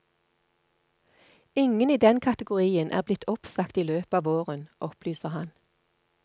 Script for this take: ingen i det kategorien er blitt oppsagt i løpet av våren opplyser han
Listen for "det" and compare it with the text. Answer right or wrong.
wrong